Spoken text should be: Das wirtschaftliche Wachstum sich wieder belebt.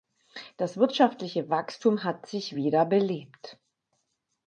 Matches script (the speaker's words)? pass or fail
fail